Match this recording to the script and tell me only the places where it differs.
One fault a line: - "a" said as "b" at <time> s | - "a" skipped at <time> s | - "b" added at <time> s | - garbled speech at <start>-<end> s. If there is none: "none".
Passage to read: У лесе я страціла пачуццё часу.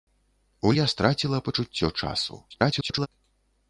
- "лесе" skipped at 0.7 s
- garbled speech at 2.5-3.1 s